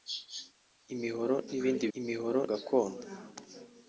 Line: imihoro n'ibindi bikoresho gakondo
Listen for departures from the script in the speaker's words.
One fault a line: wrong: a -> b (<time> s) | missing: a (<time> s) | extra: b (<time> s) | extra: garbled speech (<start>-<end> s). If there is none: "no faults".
wrong: bikoresho -> imihoro (2.0 s)